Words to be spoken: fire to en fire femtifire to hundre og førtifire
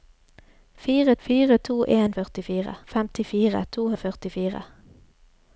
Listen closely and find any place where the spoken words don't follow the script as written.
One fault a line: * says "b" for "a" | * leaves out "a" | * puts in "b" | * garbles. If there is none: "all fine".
* puts in "fire"
* says "førtifire" for "fire"
* leaves out "hundre"